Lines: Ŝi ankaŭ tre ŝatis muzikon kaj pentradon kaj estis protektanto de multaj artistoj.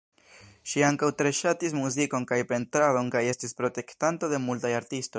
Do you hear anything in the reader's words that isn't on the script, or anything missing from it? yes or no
no